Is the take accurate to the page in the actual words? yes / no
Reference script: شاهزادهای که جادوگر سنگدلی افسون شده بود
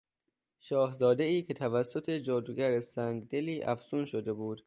no